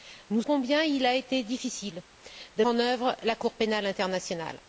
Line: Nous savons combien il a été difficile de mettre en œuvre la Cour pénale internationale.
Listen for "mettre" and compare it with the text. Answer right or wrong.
wrong